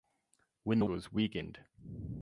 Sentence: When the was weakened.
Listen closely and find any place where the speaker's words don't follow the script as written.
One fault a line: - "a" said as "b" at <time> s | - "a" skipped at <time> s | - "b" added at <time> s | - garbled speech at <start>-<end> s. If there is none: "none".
none